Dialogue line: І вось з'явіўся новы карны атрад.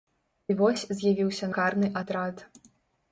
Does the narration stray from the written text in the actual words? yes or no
yes